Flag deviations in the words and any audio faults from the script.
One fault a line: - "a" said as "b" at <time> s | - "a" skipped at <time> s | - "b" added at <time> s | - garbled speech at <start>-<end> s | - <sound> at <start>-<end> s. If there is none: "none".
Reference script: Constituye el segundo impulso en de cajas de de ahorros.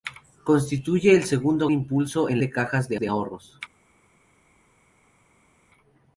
none